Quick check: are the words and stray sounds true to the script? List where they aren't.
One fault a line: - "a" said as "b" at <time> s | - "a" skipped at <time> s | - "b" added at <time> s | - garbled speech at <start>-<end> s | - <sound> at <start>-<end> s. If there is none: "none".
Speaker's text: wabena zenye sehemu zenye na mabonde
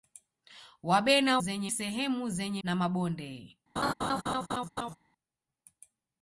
- laugh at 3.8-5.0 s